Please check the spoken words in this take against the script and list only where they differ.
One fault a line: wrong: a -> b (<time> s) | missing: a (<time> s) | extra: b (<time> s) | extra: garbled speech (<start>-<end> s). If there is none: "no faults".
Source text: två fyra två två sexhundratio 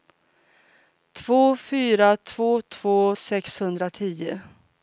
no faults